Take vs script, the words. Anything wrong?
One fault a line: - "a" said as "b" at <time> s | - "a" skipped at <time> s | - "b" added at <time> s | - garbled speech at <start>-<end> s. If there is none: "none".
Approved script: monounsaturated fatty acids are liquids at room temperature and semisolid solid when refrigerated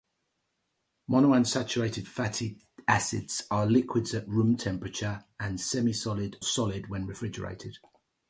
none